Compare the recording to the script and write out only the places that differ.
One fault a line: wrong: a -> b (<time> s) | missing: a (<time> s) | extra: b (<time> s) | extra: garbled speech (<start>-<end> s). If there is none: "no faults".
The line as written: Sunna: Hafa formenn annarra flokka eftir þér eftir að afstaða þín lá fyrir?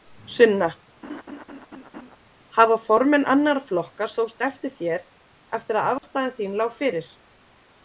extra: sóst (4.2 s)